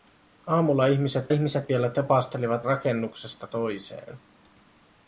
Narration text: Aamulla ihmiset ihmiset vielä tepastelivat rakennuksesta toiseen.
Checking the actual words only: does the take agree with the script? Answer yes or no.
yes